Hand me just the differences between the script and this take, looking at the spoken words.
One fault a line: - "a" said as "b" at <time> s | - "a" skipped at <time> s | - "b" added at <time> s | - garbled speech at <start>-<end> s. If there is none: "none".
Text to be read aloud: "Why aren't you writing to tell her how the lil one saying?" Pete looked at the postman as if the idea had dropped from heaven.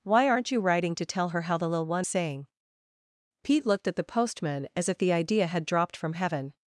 none